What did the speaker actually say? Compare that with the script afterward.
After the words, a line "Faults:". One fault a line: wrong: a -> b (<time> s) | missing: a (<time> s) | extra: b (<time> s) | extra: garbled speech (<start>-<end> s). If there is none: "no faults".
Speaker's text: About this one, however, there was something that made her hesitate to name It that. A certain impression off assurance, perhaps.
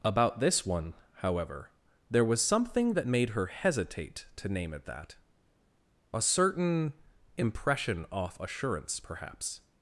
About this one, however, there was something that made her hesitate to name It that. A certain impression off assurance, perhaps.
Faults:
no faults